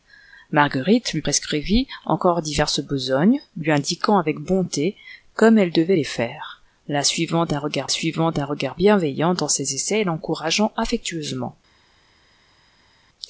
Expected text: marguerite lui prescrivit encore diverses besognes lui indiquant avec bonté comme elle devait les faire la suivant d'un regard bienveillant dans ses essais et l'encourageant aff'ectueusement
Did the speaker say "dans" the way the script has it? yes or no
yes